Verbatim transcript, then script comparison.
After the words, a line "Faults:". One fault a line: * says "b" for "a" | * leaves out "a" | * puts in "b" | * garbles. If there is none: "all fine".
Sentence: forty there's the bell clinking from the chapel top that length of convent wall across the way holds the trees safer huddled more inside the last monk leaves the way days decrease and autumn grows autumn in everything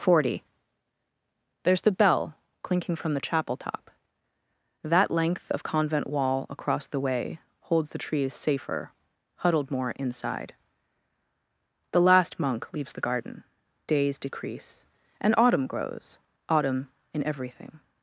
forty there's the bell clinking from the chapel top that length of convent wall across the way holds the trees safer huddled more inside the last monk leaves the garden days decrease and autumn grows autumn in everything
Faults:
* says "garden" for "way"